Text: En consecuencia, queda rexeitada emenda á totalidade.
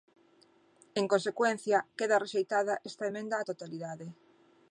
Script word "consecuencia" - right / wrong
right